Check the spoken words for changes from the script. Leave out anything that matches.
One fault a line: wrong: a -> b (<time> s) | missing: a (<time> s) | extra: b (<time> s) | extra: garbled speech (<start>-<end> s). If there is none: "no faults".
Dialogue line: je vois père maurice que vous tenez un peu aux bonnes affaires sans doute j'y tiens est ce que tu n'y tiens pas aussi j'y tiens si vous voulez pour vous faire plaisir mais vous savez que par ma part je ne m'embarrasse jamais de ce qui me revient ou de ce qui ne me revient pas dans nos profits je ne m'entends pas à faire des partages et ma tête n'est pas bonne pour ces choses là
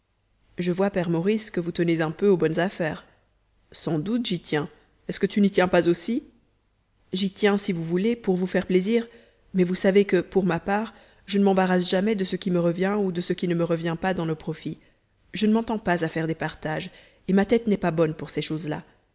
wrong: par -> pour (10.2 s)